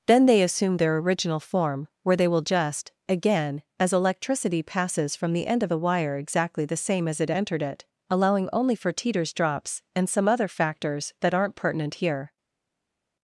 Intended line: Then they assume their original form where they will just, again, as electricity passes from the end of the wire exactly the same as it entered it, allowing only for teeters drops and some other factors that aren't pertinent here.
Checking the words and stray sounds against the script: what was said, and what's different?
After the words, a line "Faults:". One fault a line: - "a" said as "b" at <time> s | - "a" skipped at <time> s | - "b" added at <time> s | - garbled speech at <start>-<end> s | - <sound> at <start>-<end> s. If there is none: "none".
Then they assume their original form where they will just, again, as electricity passes from the end of the wire exactly the same as it entered it, allowing only for teeters drops and some other factors that aren't pertinent here.
Faults:
none